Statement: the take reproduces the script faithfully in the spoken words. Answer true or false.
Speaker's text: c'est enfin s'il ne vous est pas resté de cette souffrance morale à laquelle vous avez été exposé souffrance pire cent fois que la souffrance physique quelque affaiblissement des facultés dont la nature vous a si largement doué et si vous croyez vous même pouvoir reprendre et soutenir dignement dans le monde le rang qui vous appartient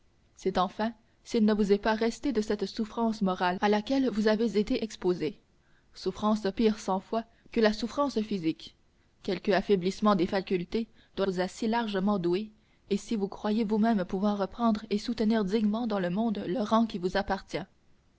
false